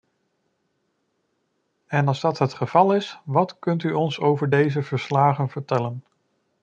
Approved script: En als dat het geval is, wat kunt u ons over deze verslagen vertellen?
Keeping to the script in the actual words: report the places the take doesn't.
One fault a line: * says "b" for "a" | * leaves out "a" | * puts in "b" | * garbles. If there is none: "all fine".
all fine